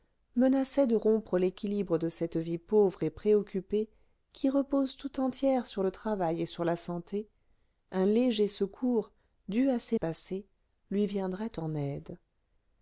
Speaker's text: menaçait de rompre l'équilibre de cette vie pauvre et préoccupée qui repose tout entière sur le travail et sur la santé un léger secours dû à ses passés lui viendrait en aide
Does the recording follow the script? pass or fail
pass